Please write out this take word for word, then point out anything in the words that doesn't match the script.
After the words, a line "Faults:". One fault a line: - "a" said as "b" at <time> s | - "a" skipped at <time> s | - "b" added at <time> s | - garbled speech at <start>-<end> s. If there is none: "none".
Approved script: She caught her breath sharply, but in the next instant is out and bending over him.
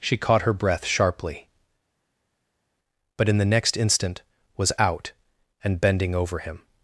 She caught her breath sharply, but in the next instant was out and bending over him.
Faults:
- "is" said as "was" at 4.6 s